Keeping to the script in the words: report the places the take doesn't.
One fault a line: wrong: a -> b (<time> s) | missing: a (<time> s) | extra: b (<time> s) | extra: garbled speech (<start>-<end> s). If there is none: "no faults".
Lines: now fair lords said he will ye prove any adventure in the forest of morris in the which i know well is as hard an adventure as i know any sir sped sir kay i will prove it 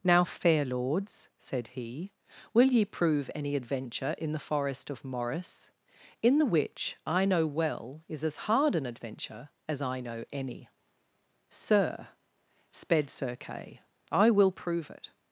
no faults